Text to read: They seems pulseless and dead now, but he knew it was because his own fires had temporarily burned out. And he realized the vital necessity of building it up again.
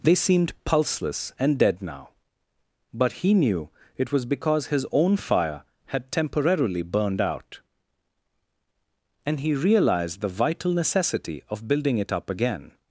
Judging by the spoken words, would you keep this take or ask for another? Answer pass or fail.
fail